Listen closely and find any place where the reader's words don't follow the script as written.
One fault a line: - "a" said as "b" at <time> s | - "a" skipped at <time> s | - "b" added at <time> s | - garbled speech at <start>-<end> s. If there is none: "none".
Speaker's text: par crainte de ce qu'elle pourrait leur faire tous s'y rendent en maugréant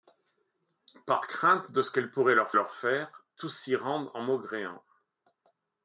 - "leur" added at 2.5 s